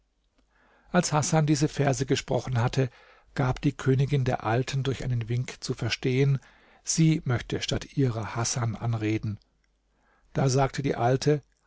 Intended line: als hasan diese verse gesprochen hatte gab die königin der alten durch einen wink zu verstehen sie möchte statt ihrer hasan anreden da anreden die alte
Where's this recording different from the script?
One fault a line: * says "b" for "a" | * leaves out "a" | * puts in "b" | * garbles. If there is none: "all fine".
* says "sagte" for "anreden"